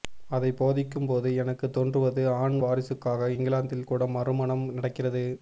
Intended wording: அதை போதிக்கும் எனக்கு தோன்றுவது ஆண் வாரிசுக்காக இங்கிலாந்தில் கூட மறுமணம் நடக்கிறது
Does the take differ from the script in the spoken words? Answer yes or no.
yes